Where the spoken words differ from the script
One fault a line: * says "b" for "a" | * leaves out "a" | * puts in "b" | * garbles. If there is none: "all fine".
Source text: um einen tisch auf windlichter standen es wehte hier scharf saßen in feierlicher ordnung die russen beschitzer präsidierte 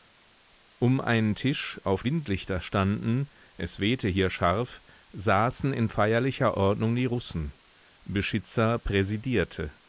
all fine